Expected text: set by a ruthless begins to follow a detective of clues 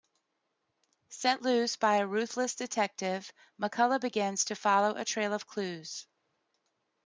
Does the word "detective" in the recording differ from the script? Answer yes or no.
yes